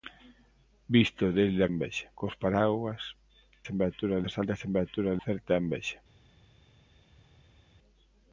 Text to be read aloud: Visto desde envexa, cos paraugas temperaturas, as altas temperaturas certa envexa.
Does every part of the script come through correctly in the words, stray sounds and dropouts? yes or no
yes